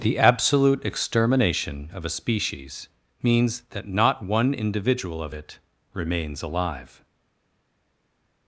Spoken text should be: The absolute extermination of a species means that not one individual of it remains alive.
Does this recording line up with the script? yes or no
yes